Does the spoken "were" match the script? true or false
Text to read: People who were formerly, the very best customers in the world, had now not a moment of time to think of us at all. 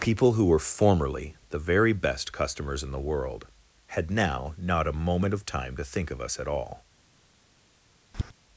true